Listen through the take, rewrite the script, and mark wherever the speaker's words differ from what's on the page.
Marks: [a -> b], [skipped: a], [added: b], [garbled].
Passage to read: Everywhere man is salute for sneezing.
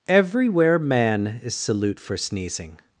Everywhere man is salute for sneezing.